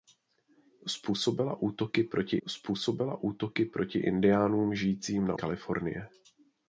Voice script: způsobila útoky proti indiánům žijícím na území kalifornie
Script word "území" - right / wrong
wrong